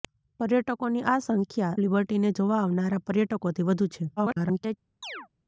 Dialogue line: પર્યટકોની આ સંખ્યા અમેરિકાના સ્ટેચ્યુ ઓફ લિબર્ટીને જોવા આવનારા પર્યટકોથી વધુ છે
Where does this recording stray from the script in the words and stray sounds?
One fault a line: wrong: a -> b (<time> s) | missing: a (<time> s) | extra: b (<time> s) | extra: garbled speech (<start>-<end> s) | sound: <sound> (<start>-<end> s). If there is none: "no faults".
missing: અમેરિકાના સ્ટેચ્યુ ઓફ (1.8 s)
extra: garbled speech (4.2-4.8 s)
sound: chirp (5.0-5.3 s)